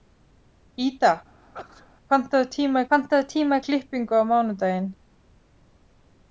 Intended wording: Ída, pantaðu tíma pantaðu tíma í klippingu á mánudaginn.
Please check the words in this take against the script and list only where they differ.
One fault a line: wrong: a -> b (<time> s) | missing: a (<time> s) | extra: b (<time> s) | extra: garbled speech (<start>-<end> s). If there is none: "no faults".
no faults